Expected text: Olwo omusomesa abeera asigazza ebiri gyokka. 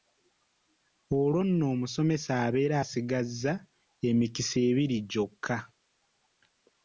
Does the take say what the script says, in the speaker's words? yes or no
no